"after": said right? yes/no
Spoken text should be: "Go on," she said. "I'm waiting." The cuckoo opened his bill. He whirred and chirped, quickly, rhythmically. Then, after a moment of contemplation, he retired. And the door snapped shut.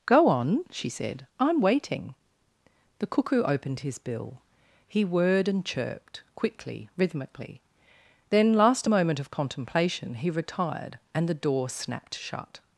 no